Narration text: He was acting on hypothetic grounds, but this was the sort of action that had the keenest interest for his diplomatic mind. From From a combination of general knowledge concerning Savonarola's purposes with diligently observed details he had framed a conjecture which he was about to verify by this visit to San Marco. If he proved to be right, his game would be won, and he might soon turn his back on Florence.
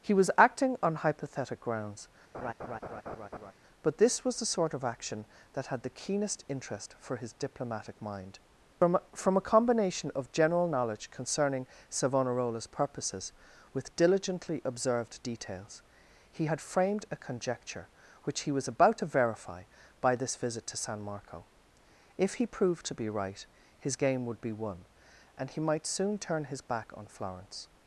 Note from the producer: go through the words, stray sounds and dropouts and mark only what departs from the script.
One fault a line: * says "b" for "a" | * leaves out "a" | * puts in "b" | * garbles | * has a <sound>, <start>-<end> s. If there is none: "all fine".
* has a laugh, 2.3-3.5 s